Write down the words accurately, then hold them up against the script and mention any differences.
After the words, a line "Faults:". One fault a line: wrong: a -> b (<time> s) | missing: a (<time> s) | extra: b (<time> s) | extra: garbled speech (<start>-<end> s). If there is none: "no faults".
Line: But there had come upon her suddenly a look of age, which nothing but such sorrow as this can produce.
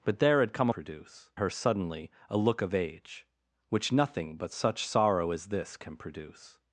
But there had come produce her suddenly a look of age, which nothing but such sorrow as this can produce.
Faults:
wrong: upon -> produce (0.7 s)